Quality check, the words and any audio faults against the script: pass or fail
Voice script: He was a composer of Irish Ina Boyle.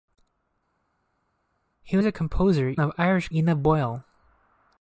pass